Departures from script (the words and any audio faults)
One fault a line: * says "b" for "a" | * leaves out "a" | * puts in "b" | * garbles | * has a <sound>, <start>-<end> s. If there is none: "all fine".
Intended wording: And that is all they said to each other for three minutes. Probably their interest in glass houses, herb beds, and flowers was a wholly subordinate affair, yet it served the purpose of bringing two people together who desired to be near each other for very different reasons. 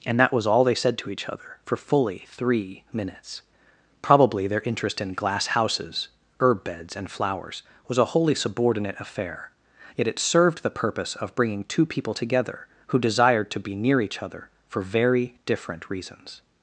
* says "was" for "is"
* puts in "fully"